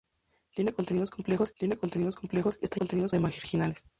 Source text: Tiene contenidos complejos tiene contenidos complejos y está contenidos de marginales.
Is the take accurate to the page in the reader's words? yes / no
yes